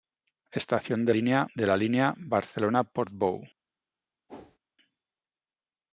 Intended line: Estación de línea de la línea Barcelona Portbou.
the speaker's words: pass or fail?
pass